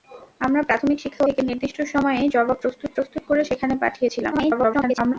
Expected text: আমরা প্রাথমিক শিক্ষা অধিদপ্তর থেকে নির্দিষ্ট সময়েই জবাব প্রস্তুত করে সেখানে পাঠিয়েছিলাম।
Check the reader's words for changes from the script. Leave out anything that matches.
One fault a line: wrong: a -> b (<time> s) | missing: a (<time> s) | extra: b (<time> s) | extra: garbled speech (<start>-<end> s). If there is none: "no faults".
missing: অধিদপ্তর (1.2 s)
extra: প্রস্তুত (3.0 s)
extra: garbled speech (4.3-5.1 s)